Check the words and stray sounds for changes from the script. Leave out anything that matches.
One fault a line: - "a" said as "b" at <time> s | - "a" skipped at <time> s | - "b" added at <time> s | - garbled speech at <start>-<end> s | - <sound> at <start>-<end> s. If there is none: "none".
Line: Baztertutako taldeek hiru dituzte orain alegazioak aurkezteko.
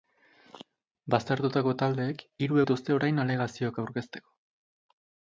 none